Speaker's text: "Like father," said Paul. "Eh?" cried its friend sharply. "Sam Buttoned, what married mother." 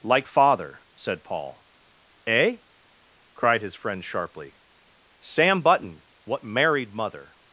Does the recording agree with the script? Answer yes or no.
no